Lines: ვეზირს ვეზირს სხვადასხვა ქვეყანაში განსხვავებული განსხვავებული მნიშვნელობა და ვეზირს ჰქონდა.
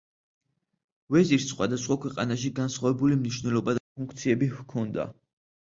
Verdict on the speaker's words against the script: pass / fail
fail